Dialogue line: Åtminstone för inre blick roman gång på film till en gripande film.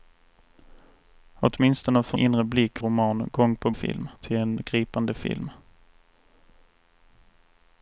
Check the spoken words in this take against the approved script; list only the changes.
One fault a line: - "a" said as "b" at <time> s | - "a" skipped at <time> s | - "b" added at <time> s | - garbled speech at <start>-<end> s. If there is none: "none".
none